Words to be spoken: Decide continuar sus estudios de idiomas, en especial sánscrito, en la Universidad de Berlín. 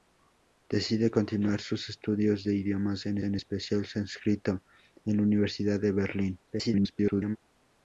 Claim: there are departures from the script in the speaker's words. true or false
true